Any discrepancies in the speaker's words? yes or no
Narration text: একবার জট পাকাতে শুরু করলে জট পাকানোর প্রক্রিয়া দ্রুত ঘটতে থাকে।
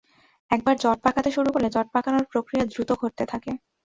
no